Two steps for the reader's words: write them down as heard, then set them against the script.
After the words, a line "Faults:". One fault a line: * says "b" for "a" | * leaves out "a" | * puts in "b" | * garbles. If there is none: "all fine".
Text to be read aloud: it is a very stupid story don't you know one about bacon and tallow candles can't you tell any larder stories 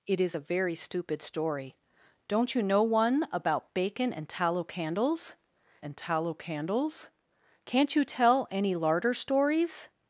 it is a very stupid story don't you know one about bacon and tallow candles and tallow candles can't you tell any larder stories
Faults:
* puts in "and tallow candles"